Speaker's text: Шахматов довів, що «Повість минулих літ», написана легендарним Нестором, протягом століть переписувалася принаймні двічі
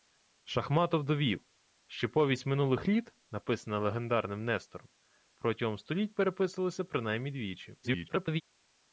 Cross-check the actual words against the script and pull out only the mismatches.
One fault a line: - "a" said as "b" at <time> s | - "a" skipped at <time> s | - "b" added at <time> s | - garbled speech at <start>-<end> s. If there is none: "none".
- garbled speech at 7.8-8.4 s